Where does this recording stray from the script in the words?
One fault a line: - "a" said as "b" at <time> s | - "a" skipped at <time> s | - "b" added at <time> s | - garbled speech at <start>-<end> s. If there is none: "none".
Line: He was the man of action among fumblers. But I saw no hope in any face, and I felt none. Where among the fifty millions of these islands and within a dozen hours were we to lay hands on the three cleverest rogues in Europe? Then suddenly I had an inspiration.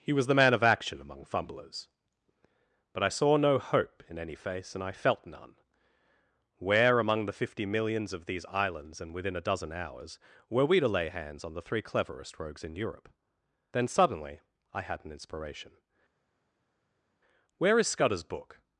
- "Where is Scudder's book" added at 17.6 s